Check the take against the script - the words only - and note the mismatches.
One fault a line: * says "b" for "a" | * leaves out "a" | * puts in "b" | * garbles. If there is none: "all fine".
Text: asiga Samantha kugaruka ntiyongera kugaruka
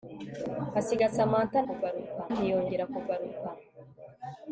all fine